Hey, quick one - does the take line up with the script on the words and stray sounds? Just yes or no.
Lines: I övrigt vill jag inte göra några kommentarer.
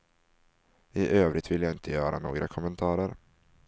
yes